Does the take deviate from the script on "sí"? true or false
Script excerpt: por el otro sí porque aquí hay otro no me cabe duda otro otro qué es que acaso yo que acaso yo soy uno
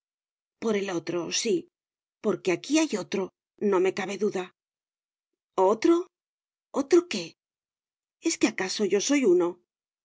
false